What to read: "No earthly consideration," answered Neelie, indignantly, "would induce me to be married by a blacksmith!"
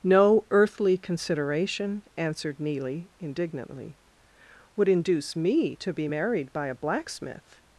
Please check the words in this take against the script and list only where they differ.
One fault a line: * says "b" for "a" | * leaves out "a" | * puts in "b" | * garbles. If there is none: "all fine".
all fine